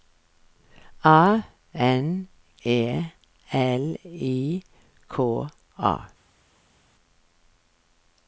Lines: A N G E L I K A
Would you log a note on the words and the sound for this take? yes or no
yes